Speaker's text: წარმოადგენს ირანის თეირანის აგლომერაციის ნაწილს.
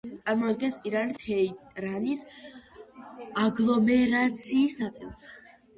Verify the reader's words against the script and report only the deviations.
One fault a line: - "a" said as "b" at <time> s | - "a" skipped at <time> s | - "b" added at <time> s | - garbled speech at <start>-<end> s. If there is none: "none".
none